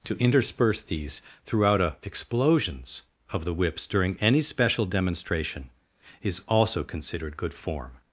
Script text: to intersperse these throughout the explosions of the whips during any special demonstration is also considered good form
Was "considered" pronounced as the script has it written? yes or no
yes